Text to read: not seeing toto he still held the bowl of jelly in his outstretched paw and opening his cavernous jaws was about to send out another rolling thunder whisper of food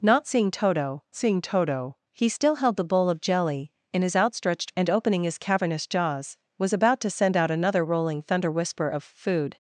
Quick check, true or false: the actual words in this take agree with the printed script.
false